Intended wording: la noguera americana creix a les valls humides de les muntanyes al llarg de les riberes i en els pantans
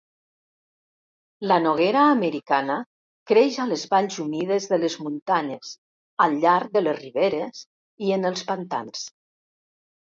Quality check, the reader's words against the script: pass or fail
pass